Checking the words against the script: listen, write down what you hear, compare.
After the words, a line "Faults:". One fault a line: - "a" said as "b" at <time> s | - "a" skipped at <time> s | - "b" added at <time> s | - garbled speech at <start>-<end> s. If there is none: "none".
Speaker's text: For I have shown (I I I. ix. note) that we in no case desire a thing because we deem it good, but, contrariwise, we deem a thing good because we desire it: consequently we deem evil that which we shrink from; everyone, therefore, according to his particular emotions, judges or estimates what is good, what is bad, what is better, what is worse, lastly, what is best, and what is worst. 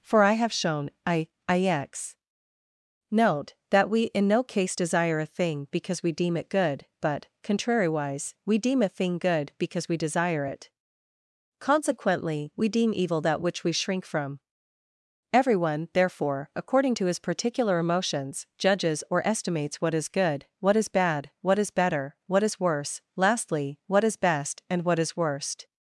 For I have shown (I. ix. note) that we in no case desire a thing because we deem it good, but, contrariwise, we deem a thing good because we desire it: consequently we deem evil that which we shrink from; everyone, therefore, according to his particular emotions, judges or estimates what is good, what is bad, what is better, what is worse, lastly, what is best, and what is worst.
Faults:
- "I I" skipped at 1.3 s